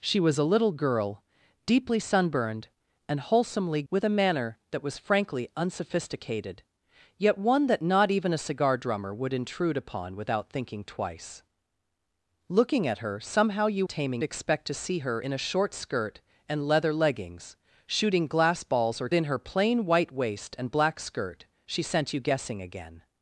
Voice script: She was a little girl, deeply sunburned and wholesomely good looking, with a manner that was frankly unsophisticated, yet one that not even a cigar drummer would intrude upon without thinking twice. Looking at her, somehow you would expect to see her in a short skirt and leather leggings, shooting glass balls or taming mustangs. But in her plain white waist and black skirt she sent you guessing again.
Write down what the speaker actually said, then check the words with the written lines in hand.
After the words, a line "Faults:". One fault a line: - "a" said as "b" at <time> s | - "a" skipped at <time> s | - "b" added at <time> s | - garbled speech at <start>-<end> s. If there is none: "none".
She was a little girl, deeply sunburned and wholesomely with a manner that was frankly unsophisticated, yet one that not even a cigar drummer would intrude upon without thinking twice. Looking at her, somehow you taming expect to see her in a short skirt and leather leggings, shooting glass balls or in her plain white waist and black skirt she sent you guessing again.
Faults:
- "good looking" skipped at 3.8 s
- "would" said as "taming" at 13.8 s
- "taming mustangs But" skipped at 19.1 s